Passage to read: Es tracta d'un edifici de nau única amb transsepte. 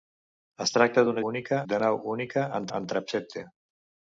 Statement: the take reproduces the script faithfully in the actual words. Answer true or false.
false